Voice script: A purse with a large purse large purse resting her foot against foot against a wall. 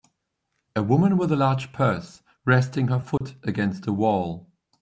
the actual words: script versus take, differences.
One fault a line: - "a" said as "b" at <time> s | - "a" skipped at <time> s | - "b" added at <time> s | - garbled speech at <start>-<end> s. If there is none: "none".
- "purse" said as "woman" at 0.8 s
- "large purse" skipped at 2.2 s
- "foot against" skipped at 3.8 s